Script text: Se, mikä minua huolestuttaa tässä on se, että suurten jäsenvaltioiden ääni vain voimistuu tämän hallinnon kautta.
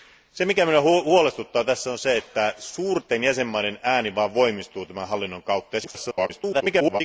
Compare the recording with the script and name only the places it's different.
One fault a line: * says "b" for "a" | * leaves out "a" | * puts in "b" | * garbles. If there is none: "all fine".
* garbles